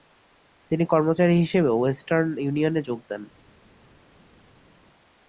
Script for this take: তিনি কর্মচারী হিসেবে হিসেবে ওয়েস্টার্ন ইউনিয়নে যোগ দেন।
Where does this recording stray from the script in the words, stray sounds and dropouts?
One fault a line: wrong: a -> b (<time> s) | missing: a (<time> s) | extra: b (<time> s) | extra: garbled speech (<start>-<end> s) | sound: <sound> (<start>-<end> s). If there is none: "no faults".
missing: হিসেবে (1.7 s)